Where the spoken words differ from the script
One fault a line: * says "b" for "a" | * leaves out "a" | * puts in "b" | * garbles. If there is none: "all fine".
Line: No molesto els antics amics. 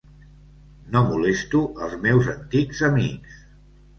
* puts in "meus"